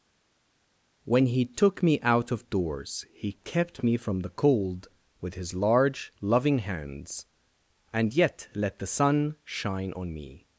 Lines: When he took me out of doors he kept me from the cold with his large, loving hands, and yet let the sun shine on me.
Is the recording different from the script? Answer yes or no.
no